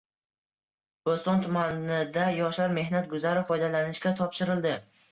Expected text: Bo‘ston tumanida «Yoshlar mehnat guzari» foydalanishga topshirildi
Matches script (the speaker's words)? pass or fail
pass